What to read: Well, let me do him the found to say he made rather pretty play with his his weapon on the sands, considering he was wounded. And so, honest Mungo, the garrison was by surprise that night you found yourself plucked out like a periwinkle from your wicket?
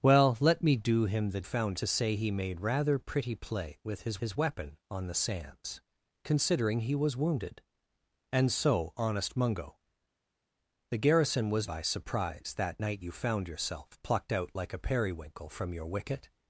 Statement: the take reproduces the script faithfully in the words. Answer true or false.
true